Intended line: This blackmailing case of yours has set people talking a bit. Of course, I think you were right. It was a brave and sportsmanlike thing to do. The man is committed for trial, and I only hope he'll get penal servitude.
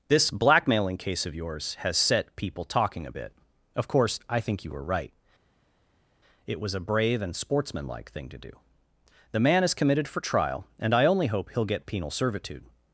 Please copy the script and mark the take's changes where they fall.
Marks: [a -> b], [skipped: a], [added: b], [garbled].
This blackmailing case of yours has set people talking a bit. Of course, I think you were right. It was a brave and sportsmanlike thing to do. The man is committed for trial, and I only hope he'll get penal servitude.